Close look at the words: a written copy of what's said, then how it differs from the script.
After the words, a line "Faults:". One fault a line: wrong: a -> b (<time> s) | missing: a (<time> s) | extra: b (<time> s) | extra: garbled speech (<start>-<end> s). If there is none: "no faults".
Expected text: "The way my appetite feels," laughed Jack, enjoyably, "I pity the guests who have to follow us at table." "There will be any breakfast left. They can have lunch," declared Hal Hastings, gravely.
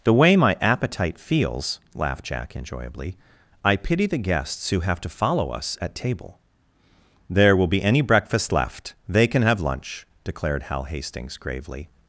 "The way my appetite feels," laughed Jack, enjoyably, "I pity the guests who have to follow us at table." "There will be any breakfast left. They can have lunch," declared Hal Hastings, gravely.
Faults:
no faults